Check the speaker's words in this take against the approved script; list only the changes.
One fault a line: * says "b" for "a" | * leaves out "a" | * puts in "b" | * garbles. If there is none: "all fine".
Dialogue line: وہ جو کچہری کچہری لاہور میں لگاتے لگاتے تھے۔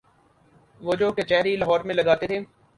* leaves out "کچہری"
* leaves out "لگاتے"